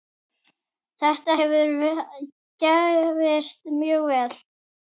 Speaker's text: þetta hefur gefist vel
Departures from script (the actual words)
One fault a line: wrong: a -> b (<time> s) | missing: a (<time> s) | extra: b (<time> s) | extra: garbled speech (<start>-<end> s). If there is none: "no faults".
extra: mjög (3.8 s)